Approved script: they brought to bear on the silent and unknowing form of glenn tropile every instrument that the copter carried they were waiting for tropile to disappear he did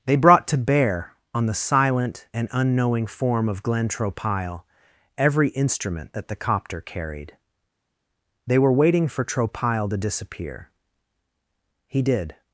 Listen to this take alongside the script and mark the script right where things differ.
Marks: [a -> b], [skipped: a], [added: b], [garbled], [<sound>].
they brought to bear on the silent and unknowing form of glenn tropile every instrument that the copter carried they were waiting for tropile to disappear he did